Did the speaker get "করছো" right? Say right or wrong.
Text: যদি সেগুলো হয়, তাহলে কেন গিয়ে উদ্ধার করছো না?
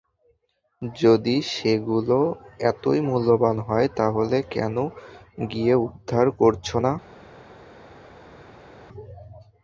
right